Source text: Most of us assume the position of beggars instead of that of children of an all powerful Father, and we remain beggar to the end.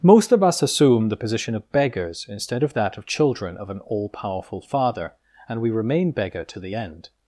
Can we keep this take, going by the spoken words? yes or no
yes